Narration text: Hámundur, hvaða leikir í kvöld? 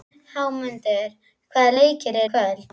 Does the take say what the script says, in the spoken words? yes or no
yes